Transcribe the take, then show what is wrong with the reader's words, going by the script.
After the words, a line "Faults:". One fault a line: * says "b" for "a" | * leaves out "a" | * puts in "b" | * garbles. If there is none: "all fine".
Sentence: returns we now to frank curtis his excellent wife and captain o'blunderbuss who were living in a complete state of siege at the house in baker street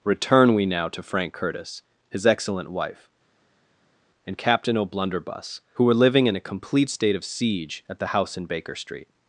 return we now to frank curtis his excellent wife and captain o'blunderbuss who were living in a complete state of siege at the house in baker street
Faults:
* says "return" for "returns"